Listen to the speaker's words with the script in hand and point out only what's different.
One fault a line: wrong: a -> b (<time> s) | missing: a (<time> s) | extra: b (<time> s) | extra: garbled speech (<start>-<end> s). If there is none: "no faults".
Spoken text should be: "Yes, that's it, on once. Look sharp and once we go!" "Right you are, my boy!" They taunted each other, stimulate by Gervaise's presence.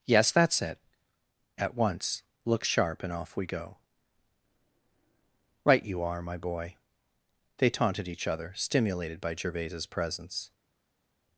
wrong: on -> at (1.6 s)
wrong: once -> off (3.1 s)
wrong: stimulate -> stimulated (8.5 s)